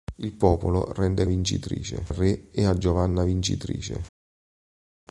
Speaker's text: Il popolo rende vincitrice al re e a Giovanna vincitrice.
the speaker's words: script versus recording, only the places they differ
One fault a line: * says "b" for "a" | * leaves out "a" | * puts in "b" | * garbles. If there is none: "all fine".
all fine